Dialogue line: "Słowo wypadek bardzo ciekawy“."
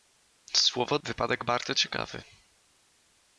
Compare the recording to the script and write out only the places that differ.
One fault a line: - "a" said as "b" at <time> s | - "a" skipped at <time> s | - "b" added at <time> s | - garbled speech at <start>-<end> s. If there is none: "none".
none